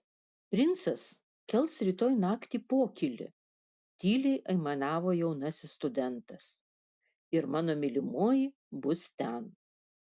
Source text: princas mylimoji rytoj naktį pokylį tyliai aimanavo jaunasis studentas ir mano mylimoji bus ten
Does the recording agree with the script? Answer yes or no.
no